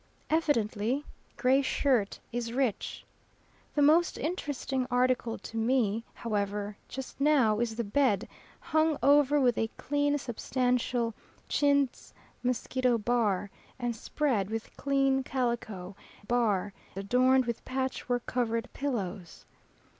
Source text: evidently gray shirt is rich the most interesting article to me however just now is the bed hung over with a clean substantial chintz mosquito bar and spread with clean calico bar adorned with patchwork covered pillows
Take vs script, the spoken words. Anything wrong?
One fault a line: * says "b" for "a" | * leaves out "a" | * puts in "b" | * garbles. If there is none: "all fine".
all fine